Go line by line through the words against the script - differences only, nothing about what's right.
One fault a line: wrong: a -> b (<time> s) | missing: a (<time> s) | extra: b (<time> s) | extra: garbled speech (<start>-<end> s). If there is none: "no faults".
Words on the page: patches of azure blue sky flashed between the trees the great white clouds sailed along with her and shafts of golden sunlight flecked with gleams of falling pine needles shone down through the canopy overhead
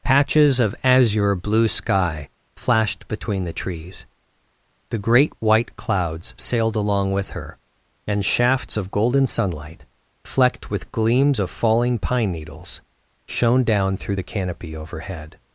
no faults